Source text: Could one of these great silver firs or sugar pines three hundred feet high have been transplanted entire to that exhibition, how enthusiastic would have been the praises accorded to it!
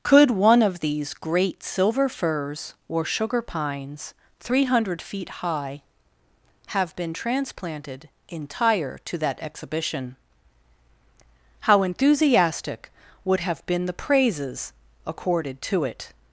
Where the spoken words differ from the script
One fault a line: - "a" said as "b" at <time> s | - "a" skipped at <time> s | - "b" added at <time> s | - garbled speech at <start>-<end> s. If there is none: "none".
none